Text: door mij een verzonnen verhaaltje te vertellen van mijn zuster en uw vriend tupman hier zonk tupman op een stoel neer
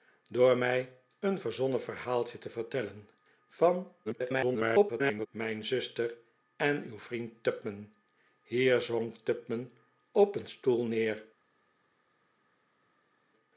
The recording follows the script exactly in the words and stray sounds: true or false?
false